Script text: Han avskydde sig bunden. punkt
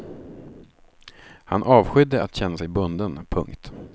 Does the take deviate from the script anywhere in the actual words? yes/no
yes